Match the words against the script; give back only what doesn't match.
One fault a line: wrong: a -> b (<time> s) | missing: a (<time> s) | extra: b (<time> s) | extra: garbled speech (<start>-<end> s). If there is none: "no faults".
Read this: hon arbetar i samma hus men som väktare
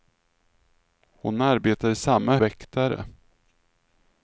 missing: hus men som (2.4 s)